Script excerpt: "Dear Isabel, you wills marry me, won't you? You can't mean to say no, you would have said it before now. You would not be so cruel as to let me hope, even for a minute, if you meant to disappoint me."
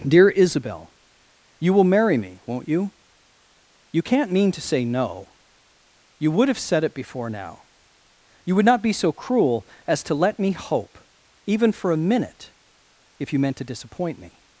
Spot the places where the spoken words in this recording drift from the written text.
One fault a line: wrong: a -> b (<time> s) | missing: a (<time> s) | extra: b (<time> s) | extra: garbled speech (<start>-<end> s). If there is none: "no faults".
wrong: wills -> will (1.7 s)